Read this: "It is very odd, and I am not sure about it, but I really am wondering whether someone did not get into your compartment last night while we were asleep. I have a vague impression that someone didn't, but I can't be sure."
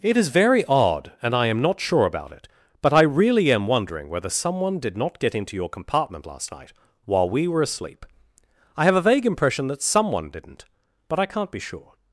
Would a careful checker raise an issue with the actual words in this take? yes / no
no